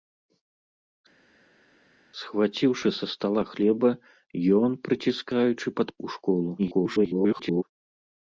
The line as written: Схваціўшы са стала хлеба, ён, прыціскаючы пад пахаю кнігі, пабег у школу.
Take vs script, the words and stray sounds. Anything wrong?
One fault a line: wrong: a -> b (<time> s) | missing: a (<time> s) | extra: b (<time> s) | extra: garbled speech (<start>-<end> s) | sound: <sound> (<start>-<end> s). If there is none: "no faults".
missing: пахаю кнігі пабег (5.9 s)
extra: garbled speech (6.6-7.6 s)